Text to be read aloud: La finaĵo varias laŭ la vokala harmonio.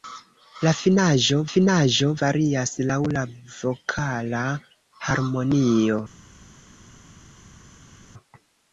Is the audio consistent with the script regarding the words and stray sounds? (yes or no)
no